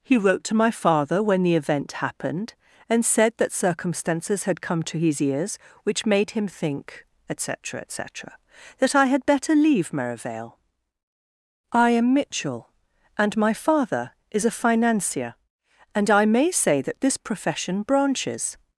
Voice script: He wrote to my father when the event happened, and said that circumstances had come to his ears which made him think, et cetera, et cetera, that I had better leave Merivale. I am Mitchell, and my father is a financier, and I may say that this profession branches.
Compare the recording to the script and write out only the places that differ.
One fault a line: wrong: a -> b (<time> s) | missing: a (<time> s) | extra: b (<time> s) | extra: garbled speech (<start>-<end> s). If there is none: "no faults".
no faults